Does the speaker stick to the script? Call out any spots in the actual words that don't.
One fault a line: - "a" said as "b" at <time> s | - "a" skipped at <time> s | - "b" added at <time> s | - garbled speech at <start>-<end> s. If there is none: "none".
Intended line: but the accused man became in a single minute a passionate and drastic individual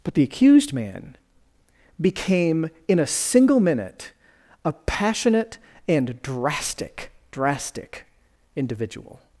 - "drastic" added at 7.3 s